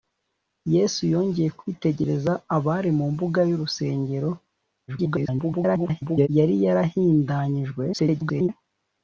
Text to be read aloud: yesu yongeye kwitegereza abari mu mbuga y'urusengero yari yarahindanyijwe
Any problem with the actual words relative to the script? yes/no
yes